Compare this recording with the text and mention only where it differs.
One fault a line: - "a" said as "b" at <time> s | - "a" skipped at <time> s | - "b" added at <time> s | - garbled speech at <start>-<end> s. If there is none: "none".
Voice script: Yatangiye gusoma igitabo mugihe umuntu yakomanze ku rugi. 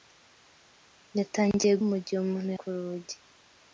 - "gusoma igitabo" skipped at 1.7 s
- "yakomanze" skipped at 2.5 s